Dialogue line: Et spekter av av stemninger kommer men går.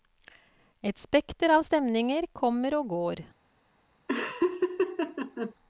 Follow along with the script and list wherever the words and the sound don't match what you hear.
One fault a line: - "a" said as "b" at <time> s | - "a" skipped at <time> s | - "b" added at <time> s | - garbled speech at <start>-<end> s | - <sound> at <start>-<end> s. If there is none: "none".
- "av" skipped at 1.6 s
- "men" said as "og" at 2.8 s
- laugh at 4.1-5.5 s